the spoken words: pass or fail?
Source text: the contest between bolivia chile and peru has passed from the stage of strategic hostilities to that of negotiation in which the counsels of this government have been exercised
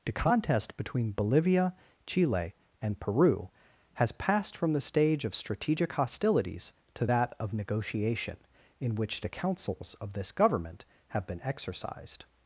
pass